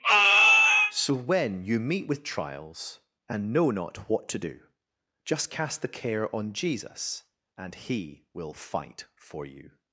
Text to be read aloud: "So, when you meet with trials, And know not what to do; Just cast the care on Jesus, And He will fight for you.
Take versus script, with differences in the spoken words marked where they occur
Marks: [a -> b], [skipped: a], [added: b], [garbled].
"So, when you meet with trials, And know not what to do; Just cast the care on Jesus, And He will fight for you.